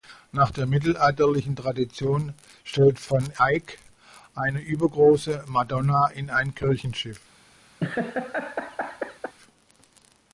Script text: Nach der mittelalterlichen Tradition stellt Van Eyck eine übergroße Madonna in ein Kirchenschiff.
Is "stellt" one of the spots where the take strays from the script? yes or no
no